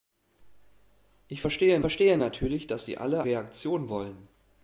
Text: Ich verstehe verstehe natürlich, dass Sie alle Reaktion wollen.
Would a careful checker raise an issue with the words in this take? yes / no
no